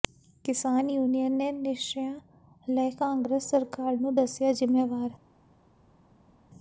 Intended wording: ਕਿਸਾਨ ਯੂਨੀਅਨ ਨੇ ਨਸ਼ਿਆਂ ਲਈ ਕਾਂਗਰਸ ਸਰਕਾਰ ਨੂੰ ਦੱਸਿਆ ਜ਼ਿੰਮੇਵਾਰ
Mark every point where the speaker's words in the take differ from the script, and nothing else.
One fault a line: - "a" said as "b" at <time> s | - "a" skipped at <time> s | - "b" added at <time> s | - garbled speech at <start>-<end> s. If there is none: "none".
none